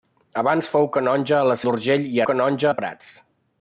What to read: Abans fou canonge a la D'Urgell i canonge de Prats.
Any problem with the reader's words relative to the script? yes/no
no